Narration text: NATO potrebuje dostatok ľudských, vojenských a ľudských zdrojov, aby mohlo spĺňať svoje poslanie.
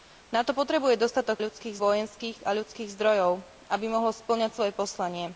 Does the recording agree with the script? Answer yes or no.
yes